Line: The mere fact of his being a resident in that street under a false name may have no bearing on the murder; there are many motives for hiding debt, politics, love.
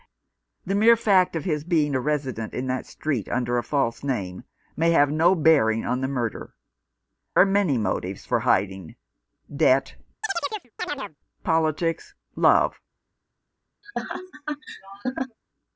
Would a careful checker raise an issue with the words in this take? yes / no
yes